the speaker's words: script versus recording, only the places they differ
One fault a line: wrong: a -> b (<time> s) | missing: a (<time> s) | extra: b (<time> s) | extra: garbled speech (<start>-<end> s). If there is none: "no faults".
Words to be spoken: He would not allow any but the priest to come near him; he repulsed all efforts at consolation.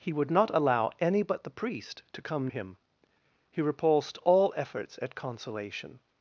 missing: near (2.5 s)